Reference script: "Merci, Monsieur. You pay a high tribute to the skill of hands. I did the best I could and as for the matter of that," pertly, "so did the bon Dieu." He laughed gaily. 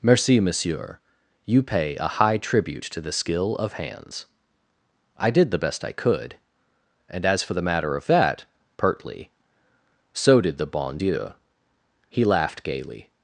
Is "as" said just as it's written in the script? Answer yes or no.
yes